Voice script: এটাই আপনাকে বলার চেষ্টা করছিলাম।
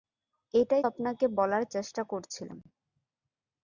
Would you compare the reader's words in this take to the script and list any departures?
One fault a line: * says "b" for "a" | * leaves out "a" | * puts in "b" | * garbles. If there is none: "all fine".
all fine